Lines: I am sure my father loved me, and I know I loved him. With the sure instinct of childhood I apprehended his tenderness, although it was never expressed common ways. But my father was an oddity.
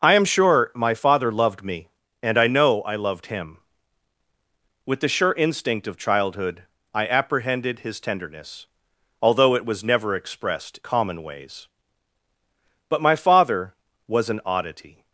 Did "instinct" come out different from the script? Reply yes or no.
no